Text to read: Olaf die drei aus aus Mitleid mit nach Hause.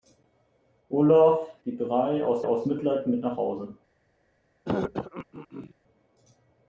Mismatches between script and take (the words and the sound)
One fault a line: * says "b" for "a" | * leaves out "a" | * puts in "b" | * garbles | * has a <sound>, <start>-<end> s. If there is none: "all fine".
* has a throat clearing, 4.7-5.7 s